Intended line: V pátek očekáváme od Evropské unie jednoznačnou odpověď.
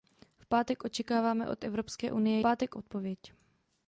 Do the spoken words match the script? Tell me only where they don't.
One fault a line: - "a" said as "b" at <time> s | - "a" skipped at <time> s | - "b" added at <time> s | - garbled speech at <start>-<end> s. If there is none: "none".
- "jednoznačnou" said as "pátek" at 2.4 s